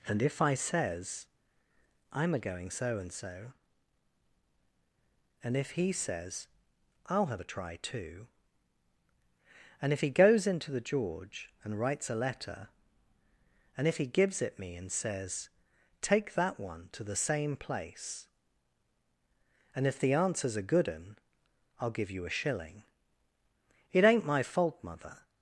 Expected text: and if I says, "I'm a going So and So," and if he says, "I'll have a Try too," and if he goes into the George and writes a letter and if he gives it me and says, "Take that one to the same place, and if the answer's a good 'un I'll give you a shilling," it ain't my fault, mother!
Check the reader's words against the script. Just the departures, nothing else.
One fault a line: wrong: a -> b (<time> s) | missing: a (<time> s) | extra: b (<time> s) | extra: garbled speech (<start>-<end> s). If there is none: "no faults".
no faults